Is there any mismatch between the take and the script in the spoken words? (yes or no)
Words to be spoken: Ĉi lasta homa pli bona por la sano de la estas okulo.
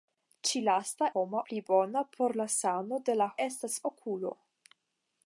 no